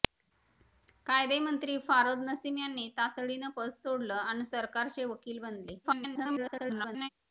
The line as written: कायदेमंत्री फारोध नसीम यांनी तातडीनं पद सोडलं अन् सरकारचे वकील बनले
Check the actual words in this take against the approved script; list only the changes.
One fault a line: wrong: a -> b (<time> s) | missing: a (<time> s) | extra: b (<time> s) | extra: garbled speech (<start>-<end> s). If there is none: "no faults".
extra: garbled speech (5.8-7.1 s)